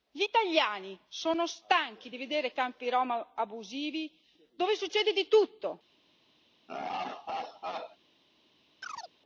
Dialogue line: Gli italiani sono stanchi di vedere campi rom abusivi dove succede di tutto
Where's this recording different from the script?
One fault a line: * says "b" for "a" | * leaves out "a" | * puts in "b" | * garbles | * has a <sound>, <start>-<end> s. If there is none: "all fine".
* has a laugh, 6.7-8.0 s
* has a chirp, 8.8-9.1 s